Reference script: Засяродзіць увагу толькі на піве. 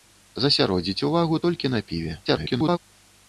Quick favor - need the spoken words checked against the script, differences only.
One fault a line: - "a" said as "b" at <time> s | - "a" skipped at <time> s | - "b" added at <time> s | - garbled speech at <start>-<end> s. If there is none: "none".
- garbled speech at 2.3-2.8 s